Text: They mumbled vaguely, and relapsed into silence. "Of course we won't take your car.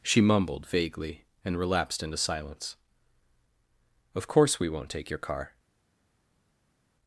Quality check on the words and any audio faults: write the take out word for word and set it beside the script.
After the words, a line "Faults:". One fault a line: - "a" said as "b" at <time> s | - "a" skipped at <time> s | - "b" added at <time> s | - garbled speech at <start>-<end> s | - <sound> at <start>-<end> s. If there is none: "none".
She mumbled vaguely, and relapsed into silence. "Of course we won't take your car.
Faults:
- "They" said as "She" at 0.0 s